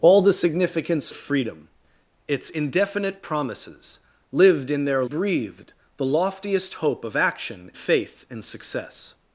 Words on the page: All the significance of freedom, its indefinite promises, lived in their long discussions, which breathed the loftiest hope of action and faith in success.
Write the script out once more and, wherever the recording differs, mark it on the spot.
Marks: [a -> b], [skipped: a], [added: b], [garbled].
All the significance [skipped: of] freedom, its indefinite promises, lived in their [skipped: long discussions, which] breathed the loftiest hope of action [skipped: and] faith in success.